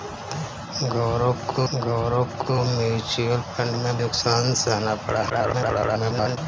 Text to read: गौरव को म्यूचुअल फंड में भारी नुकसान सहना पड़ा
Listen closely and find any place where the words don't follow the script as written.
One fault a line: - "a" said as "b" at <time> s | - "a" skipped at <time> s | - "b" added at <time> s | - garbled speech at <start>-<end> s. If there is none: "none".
- "गौरव को" added at 1.7 s
- "भारी" skipped at 4.0 s
- garbled speech at 5.3-6.4 s